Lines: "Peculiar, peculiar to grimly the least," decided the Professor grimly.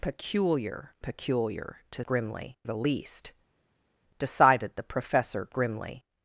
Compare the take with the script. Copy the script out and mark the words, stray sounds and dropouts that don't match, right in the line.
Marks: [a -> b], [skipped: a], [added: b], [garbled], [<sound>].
"Peculiar, peculiar to grimly the least," decided the Professor grimly.